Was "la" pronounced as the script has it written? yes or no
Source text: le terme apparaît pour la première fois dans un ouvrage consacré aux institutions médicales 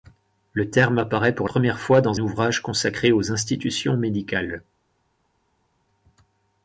no